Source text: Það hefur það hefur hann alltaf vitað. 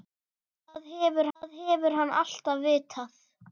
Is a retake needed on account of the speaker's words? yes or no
no